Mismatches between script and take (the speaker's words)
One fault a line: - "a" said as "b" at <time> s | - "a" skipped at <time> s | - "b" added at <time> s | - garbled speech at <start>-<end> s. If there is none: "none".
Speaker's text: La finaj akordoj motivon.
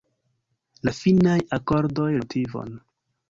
none